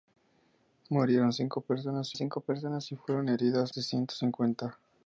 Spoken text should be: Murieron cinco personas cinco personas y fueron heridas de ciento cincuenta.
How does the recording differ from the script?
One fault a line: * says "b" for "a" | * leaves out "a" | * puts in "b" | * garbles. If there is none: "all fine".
all fine